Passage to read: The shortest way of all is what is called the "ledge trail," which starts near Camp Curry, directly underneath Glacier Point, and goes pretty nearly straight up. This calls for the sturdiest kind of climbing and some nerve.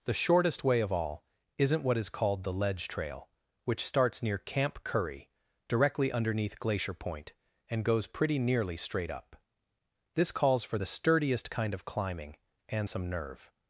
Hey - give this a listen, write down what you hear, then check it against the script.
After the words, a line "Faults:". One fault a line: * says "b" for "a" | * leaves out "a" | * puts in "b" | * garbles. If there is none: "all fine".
The shortest way of all isn't what is called the "ledge trail," which starts near Camp Curry, directly underneath Glacier Point, and goes pretty nearly straight up. This calls for the sturdiest kind of climbing and some nerve.
Faults:
* says "isn't" for "is"